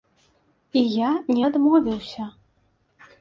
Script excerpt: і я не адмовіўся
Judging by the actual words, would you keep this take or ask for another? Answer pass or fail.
pass